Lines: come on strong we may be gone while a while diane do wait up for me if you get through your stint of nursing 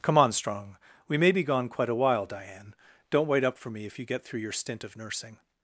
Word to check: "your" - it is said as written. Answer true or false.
true